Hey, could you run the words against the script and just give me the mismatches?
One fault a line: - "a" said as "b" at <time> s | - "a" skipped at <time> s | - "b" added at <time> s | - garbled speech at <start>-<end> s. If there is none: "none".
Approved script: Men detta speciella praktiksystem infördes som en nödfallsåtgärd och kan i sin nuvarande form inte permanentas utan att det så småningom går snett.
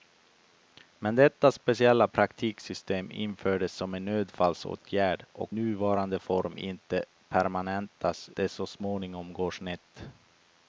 - "kan i sin" skipped at 5.5 s
- "utan att" skipped at 8.3 s